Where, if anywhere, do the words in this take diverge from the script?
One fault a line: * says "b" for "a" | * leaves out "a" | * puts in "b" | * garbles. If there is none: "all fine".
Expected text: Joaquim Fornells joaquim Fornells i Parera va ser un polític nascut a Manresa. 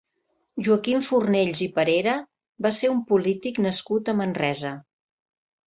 * leaves out "joaquim Fornells"